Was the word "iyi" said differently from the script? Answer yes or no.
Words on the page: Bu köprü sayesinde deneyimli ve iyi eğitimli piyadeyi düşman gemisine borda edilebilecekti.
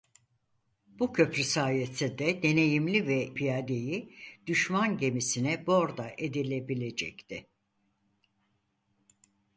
yes